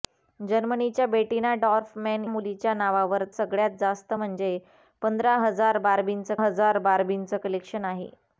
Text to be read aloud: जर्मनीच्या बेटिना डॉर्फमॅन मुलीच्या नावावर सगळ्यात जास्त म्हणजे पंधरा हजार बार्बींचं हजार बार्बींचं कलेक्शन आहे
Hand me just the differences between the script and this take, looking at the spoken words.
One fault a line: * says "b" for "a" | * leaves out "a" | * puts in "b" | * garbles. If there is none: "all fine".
all fine